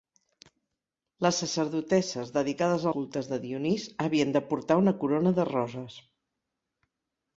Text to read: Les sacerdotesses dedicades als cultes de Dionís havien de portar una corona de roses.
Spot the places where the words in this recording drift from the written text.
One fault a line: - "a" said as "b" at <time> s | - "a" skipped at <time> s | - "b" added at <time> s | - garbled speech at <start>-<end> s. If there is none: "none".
- "als" skipped at 2.9 s